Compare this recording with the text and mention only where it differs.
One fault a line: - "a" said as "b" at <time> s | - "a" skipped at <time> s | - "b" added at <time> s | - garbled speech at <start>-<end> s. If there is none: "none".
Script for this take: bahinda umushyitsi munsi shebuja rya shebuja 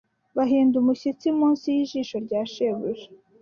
- "shebuja" said as "y'ijisho" at 1.8 s